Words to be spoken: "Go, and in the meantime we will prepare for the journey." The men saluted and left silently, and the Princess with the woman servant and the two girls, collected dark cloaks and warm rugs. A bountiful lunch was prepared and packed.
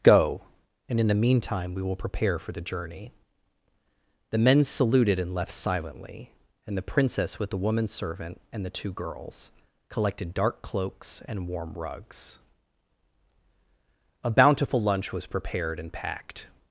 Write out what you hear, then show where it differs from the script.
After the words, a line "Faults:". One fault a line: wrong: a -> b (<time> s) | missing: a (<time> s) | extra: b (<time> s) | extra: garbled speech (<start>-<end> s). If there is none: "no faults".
"Go, and in the meantime we will prepare for the journey." The men saluted and left silently, and the Princess with the woman servant and the two girls, collected dark cloaks and warm rugs. A bountiful lunch was prepared and packed.
Faults:
no faults